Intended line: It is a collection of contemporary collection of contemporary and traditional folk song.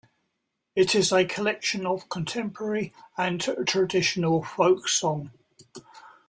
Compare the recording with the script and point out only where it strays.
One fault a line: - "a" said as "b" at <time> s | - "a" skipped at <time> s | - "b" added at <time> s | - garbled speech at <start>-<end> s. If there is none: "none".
- "collection of contemporary" skipped at 2.9 s